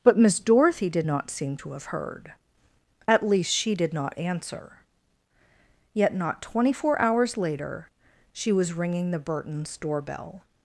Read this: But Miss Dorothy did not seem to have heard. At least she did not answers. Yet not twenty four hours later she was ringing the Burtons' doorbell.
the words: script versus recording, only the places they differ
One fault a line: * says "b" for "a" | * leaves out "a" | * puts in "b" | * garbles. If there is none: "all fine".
* says "answer" for "answers"